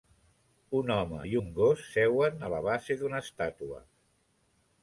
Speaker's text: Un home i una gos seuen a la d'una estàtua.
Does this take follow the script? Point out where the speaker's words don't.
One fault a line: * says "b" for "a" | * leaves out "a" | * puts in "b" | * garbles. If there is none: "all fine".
* says "un" for "una"
* puts in "base"